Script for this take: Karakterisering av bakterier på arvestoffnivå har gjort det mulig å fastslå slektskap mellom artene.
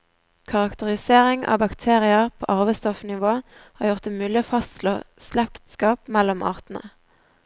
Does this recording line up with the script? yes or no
yes